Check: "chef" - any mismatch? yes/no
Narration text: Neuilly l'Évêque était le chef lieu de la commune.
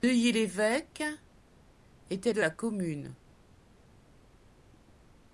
yes